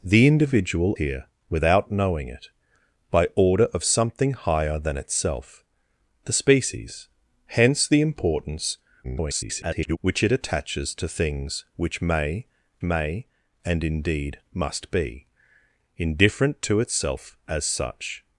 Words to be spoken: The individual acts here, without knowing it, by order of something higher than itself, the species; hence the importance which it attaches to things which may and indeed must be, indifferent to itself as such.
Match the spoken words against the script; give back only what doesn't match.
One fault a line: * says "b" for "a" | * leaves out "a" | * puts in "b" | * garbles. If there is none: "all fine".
* leaves out "acts"
* garbles
* puts in "may"